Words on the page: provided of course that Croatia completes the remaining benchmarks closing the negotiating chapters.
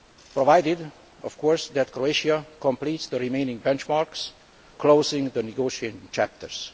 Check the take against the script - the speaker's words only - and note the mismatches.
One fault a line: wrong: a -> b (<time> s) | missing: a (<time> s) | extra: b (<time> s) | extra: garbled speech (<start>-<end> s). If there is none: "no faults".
no faults